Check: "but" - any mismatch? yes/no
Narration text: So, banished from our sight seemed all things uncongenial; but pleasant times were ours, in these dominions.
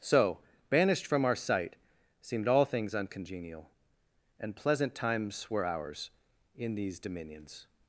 yes